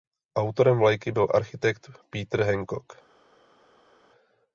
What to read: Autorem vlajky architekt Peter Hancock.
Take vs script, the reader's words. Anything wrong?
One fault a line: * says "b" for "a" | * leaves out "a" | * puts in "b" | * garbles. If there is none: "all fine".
* puts in "byl"